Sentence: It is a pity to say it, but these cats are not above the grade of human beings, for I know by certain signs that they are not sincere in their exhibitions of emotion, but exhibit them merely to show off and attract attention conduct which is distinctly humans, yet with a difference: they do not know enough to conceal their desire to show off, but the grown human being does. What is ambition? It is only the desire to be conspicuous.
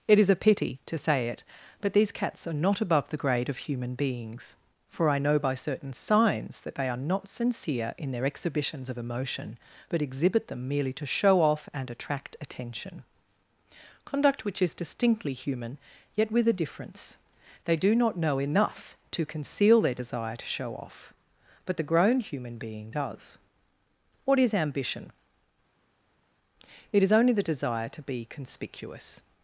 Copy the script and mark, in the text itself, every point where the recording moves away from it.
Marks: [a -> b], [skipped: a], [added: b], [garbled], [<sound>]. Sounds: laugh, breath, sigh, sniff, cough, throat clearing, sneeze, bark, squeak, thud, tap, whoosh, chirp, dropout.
It is a pity to say it, but these cats are not above the grade of human beings, for I know by certain signs that they are not sincere in their exhibitions of emotion, but exhibit them merely to show off and attract attention conduct which is distinctly [humans, -> human] yet with a difference: they do not know enough to conceal their desire to show off, but the grown human being does. What is ambition? It is only the desire to be conspicuous.